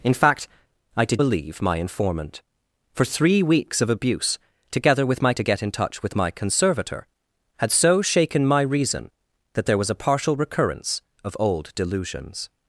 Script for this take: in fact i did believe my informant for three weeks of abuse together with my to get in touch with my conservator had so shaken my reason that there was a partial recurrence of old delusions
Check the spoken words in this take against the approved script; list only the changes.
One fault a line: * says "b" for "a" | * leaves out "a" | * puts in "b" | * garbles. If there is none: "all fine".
all fine